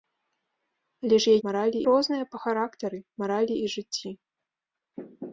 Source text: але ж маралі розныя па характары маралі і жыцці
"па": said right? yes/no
yes